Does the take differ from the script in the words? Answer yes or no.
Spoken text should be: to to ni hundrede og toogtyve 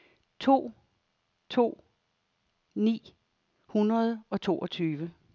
no